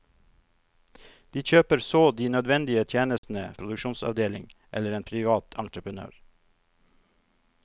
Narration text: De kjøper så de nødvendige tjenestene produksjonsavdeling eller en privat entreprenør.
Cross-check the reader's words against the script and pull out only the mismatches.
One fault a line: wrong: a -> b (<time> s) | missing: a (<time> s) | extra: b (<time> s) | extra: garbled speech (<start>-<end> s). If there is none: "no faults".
no faults